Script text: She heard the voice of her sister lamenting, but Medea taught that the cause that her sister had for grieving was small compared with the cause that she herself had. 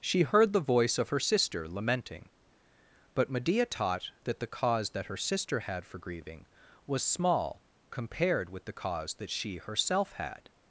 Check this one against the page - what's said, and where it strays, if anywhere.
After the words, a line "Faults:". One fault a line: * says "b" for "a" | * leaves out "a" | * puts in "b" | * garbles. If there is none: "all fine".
She heard the voice of her sister lamenting, but Medea taught that the cause that her sister had for grieving was small compared with the cause that she herself had.
Faults:
all fine